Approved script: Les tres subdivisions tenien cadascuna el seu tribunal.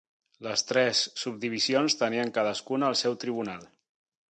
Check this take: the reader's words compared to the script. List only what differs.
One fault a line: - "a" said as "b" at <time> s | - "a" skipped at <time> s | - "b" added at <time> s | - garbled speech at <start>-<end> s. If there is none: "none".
none